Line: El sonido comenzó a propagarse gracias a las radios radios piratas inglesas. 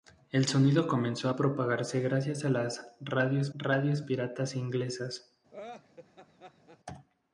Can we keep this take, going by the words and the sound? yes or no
no